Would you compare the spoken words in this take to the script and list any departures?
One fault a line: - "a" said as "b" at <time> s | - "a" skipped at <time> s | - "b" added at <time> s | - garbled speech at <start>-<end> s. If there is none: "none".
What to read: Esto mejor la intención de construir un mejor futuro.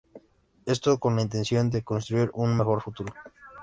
- "mejor" said as "con" at 1.0 s